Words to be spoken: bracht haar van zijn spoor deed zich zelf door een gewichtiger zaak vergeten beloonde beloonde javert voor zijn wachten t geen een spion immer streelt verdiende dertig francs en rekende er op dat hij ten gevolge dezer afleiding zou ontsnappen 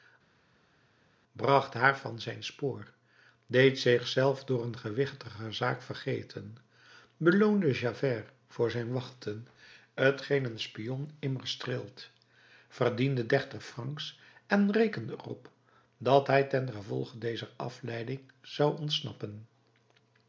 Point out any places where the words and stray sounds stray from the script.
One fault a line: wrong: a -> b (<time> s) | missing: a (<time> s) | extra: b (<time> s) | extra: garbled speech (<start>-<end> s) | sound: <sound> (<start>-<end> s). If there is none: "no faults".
missing: beloonde (7.7 s)